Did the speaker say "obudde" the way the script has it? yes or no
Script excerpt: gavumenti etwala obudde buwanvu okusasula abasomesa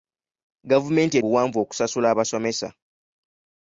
no